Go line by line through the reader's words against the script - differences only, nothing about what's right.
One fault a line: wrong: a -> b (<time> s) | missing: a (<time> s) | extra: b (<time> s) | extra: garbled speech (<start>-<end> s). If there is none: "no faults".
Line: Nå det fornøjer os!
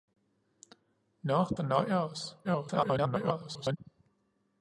missing: det (1.4 s)
extra: garbled speech (2.4-3.8 s)